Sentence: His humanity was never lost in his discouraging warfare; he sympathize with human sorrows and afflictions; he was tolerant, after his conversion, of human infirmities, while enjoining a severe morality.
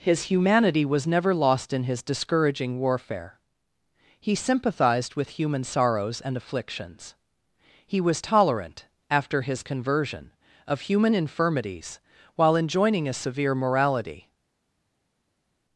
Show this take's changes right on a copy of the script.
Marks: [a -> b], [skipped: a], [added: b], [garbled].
His humanity was never lost in his discouraging warfare; he [sympathize -> sympathized] with human sorrows and afflictions; he was tolerant, after his conversion, of human infirmities, while enjoining a severe morality.